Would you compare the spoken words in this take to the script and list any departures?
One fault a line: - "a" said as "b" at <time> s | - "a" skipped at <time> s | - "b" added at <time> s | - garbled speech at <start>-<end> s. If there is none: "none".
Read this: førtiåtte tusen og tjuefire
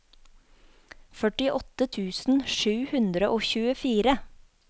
- "sju hundre" added at 2.6 s